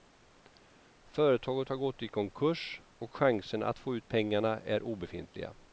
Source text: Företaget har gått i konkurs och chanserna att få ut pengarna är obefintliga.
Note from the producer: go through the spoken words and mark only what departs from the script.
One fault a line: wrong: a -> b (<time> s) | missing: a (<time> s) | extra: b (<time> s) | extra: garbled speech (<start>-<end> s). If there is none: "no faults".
no faults